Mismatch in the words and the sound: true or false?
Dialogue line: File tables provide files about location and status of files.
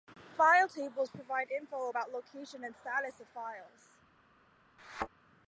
true